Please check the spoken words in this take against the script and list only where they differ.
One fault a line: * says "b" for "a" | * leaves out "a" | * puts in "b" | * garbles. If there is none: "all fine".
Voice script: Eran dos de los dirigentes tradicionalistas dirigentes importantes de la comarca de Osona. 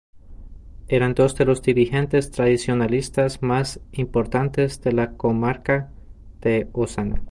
* says "más" for "dirigentes"